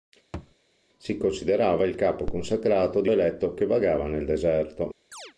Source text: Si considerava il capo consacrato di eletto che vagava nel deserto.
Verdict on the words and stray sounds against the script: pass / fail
fail